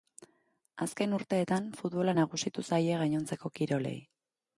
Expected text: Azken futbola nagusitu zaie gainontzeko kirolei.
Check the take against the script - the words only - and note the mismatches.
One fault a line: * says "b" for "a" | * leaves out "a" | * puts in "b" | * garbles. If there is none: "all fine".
* puts in "urteetan"